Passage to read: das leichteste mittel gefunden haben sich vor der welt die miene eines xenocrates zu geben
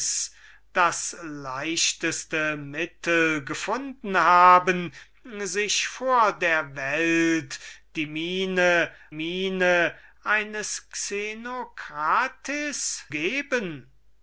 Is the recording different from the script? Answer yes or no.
yes